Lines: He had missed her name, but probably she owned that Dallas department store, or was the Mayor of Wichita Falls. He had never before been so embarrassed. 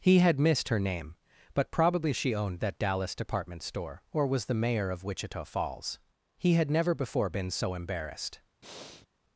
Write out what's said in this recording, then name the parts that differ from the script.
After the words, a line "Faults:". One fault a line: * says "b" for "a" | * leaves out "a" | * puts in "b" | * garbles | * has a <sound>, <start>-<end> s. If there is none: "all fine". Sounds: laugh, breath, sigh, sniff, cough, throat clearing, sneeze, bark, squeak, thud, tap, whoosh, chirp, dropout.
He had missed her name, but probably she owned that Dallas department store, or was the Mayor of Wichita Falls. He had never before been so embarrassed.
Faults:
* has a breath, 8.6-9.1 s